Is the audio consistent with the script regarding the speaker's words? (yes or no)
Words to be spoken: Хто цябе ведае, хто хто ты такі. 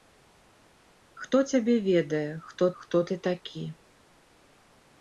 yes